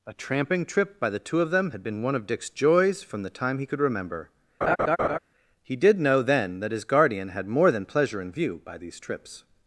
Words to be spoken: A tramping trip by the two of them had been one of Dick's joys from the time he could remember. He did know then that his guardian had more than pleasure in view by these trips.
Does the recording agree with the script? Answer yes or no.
yes